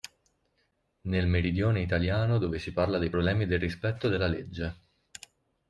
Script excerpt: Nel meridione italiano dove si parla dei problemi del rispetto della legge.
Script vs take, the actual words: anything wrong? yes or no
no